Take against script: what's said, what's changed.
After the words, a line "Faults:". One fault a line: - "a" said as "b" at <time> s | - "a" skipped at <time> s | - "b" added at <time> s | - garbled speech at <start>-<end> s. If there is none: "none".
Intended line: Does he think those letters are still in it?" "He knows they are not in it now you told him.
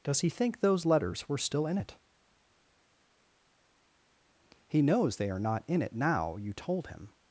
Does he think those letters were still in it?" "He knows they are not in it now you told him.
Faults:
- "are" said as "were" at 1.3 s